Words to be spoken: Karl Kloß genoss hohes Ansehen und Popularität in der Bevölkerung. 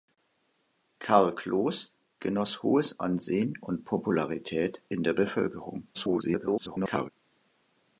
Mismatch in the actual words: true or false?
true